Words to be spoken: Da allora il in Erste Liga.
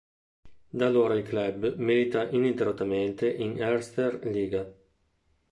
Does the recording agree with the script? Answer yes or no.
no